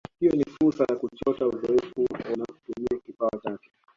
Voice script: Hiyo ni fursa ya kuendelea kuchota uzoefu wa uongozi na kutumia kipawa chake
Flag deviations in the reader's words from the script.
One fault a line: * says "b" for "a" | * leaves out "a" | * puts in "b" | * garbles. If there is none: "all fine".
* leaves out "kuendelea"
* leaves out "wa uongozi"